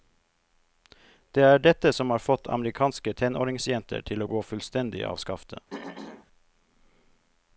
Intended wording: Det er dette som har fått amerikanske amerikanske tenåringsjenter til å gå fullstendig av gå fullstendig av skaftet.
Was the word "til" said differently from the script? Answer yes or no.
no